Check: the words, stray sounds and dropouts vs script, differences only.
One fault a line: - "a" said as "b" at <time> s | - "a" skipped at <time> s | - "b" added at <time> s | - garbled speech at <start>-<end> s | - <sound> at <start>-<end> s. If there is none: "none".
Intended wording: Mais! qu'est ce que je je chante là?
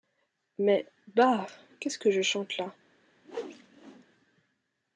- "bah" added at 1.1 s
- "je" skipped at 2.2 s
- whoosh at 3.2-4.1 s